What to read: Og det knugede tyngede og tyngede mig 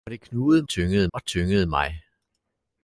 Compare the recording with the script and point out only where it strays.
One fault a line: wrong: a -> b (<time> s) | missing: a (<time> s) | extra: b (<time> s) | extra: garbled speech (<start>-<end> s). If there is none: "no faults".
no faults